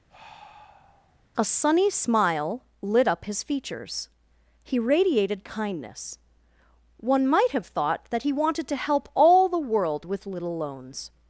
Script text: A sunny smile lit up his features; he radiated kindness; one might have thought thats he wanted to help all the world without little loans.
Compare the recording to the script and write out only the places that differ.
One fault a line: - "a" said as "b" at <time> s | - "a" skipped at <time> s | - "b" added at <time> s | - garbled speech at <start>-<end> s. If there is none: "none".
- "thats" said as "that" at 8.1 s
- "without" said as "with" at 10.1 s